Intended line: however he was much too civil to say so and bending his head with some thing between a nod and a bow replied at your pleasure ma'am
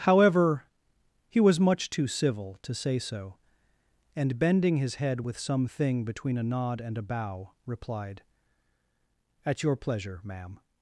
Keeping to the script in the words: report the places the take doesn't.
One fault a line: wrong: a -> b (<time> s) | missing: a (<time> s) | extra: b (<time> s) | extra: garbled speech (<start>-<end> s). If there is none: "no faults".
no faults